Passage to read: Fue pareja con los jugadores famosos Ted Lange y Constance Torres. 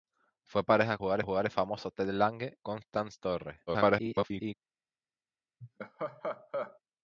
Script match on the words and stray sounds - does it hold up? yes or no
no